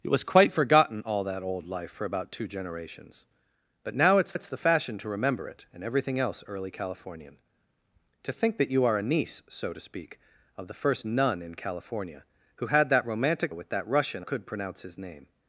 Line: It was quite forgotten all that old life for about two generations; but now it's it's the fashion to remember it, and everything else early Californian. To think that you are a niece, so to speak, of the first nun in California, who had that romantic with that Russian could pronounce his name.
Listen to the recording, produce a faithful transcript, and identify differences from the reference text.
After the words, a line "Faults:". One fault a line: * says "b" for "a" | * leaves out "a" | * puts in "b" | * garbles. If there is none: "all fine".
It was quite forgotten all that old life for about two generations; but now it's it's the fashion to remember it, and everything else early Californian. To think that you are a niece, so to speak, of the first nun in California, who had that romantic with that Russian could pronounce his name.
Faults:
all fine